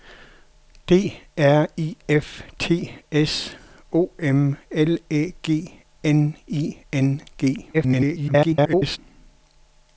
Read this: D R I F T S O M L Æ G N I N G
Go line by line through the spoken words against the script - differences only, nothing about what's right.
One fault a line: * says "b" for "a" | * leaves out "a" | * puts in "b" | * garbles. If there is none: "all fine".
* garbles